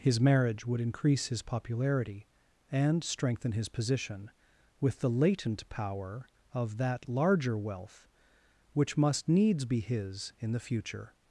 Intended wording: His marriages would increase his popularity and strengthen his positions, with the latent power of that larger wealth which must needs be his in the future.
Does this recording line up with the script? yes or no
no